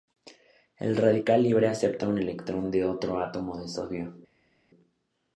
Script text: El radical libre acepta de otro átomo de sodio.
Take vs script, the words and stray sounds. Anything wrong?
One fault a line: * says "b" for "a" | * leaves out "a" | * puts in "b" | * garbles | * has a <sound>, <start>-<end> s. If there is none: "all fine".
* puts in "un electrón"